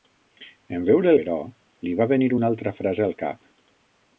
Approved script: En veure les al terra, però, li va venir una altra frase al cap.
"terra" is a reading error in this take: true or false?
true